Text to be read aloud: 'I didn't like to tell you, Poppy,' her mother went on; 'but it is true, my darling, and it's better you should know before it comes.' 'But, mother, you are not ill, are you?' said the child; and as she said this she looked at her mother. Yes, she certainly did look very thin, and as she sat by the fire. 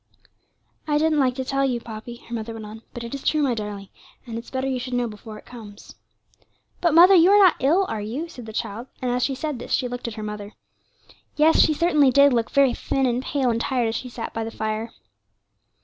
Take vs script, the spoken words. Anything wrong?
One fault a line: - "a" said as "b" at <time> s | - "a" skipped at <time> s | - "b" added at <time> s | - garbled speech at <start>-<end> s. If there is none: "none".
- "pale and tired" added at 13.2 s